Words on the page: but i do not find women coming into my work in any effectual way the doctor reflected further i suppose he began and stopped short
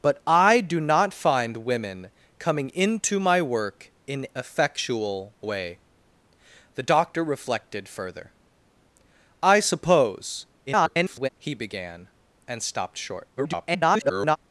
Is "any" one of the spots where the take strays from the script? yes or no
yes